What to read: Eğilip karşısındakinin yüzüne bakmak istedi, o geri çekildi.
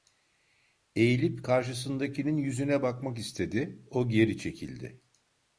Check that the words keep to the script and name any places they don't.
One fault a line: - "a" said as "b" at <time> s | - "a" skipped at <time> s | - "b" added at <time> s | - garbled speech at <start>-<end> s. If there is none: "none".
none